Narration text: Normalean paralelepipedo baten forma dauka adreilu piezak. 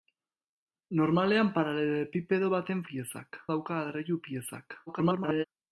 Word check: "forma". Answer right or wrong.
wrong